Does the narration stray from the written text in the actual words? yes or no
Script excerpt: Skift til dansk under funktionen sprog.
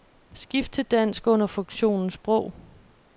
no